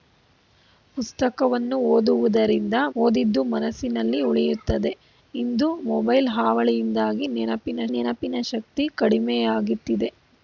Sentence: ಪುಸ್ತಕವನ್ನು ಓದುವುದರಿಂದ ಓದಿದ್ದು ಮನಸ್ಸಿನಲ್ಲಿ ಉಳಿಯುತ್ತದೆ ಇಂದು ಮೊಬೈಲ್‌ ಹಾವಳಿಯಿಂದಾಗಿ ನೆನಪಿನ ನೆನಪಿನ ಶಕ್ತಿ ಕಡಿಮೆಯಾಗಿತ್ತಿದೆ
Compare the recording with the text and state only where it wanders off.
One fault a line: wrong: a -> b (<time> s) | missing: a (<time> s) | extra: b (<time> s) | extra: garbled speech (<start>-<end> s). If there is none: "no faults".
no faults